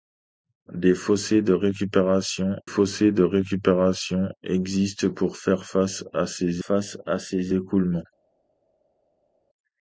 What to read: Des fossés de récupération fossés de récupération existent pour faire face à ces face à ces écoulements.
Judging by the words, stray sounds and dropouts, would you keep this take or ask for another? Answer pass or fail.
pass